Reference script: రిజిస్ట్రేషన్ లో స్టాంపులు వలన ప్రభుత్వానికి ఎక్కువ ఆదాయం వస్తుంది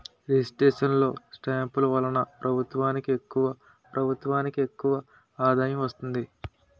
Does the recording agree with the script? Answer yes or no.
no